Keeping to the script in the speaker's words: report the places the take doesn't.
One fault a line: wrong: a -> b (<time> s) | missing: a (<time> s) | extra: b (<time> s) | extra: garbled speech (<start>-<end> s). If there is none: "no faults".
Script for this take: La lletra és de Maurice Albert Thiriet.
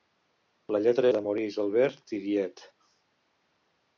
missing: és (1.1 s)